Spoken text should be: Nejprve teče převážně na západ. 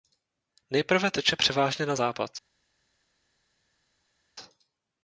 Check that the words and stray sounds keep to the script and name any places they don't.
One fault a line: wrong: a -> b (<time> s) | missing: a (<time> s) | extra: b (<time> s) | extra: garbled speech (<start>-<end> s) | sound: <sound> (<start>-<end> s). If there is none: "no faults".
no faults